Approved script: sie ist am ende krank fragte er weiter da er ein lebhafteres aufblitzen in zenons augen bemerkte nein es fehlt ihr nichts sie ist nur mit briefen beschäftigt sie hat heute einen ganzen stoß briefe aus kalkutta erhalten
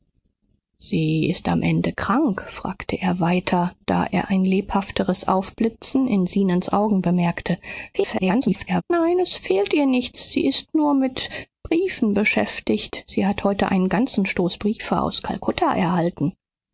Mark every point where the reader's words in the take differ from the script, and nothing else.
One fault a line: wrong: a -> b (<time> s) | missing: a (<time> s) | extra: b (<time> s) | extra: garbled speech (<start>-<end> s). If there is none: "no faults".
extra: garbled speech (7.9-8.8 s)